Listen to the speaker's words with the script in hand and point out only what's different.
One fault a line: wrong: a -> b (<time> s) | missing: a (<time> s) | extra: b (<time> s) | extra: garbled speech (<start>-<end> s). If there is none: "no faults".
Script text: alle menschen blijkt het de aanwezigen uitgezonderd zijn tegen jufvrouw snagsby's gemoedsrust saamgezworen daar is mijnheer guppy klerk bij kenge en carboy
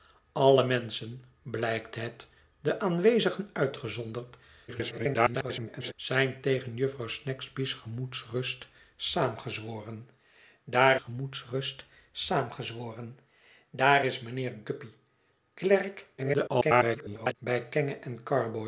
extra: garbled speech (4.7-5.9 s)
extra: gemoedsrust saamgezworen daar (10.9 s)
extra: garbled speech (16.2-17.3 s)